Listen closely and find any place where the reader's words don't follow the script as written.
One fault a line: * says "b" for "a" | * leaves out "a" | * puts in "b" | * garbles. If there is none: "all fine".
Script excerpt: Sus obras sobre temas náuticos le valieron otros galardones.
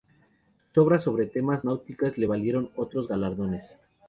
all fine